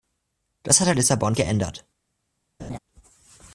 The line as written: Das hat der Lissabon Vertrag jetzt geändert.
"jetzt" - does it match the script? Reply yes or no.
no